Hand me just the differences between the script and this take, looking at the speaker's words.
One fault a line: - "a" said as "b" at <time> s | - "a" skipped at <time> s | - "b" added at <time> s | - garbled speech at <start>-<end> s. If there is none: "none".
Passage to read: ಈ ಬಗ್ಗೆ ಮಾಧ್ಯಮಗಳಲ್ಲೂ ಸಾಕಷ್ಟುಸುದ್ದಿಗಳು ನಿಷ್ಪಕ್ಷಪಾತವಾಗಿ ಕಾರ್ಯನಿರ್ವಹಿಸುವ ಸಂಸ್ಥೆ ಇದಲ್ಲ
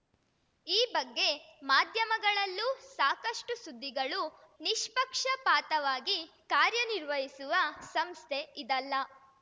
none